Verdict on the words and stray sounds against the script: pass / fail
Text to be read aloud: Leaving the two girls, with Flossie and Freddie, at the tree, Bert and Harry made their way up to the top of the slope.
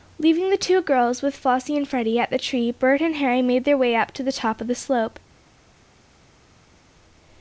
pass